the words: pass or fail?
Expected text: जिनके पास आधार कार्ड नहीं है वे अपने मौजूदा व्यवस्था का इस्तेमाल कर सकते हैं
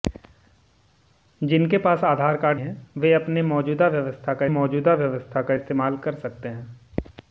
fail